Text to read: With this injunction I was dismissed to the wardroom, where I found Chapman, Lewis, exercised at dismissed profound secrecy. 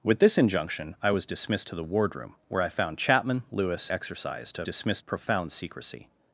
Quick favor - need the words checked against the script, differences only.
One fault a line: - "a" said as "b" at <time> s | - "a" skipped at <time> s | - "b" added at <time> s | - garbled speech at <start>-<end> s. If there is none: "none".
none